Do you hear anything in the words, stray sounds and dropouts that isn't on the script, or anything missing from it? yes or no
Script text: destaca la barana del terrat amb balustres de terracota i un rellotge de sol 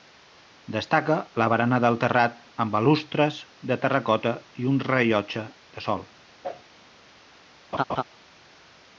yes